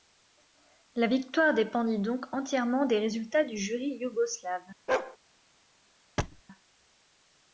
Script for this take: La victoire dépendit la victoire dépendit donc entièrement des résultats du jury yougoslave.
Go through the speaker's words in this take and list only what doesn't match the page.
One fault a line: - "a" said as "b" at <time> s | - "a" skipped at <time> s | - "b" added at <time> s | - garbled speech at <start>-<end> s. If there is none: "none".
- "la victoire dépendit" skipped at 2.0 s